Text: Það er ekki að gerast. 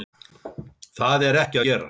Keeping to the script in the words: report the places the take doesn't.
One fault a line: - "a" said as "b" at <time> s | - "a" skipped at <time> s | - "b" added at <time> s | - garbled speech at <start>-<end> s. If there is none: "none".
- "að" skipped at 1.6 s